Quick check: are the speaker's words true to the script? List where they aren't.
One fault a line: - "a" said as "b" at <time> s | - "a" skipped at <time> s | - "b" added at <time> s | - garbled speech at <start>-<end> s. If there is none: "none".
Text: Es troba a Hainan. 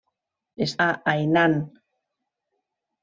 - "troba" skipped at 0.7 s